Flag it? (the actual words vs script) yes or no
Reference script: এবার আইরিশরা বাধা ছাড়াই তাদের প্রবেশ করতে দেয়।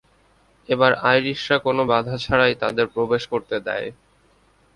yes